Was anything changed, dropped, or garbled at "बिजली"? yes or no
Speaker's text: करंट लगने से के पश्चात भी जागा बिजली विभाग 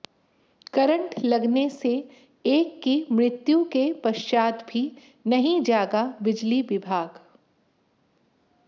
no